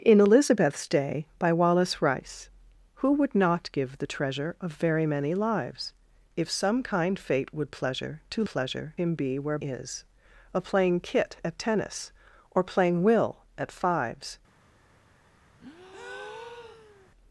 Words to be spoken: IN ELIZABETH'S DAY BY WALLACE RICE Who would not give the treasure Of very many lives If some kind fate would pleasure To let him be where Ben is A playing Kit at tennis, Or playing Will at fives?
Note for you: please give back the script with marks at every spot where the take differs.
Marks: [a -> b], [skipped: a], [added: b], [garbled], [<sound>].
IN ELIZABETH'S DAY BY WALLACE RICE Who would not give the treasure Of very many lives If some kind fate would pleasure To [let -> pleasure] him be where [skipped: Ben] is A playing Kit at tennis, Or playing Will at fives? [breath]